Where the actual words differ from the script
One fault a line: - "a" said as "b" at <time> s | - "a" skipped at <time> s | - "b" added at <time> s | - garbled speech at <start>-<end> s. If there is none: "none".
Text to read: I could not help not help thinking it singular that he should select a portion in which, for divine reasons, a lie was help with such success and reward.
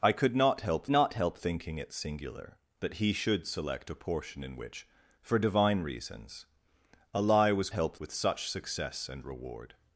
none